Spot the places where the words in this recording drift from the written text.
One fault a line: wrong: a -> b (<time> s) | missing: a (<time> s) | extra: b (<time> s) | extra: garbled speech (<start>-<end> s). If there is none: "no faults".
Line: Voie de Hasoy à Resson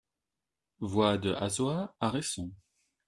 no faults